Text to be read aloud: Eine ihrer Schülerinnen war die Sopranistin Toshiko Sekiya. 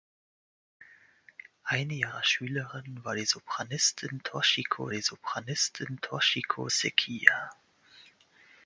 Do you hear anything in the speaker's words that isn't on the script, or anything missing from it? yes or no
yes